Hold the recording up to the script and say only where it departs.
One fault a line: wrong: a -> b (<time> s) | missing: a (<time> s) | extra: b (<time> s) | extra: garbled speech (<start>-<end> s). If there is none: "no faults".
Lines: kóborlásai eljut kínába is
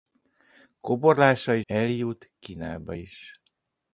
no faults